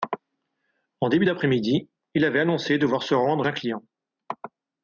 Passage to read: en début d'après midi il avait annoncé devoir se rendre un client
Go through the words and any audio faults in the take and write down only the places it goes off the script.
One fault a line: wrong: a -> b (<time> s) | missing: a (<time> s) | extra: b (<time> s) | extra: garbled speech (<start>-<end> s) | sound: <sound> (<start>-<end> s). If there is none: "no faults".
no faults